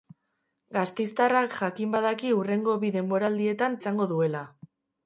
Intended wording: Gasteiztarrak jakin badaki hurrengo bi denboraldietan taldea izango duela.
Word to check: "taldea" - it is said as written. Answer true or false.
false